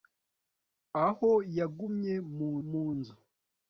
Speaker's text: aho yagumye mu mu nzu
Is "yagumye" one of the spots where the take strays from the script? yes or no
no